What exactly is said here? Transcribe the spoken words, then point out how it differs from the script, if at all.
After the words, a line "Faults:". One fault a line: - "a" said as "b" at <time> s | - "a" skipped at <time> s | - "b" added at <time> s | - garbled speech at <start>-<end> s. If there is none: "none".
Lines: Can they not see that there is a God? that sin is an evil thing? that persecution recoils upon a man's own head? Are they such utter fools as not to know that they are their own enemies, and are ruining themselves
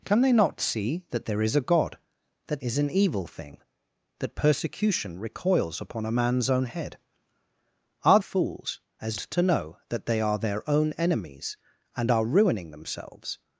Can they not see that there is a God? that is an evil thing? that persecution recoils upon a man's own head? Are fools as to know that they are their own enemies, and are ruining themselves
Faults:
- "sin" skipped at 2.6 s
- "they such utter" skipped at 8.2 s
- "not" skipped at 9.2 s